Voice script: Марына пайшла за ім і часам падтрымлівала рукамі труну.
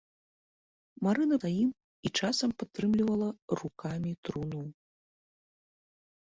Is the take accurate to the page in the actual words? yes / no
no